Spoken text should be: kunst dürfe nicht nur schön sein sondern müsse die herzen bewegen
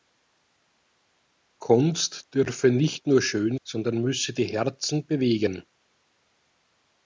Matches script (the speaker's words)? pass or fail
fail